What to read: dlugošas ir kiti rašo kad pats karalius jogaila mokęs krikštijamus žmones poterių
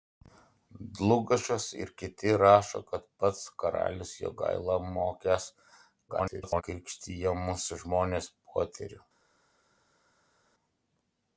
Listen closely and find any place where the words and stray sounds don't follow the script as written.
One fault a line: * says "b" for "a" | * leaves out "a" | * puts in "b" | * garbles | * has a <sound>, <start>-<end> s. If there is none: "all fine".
* garbles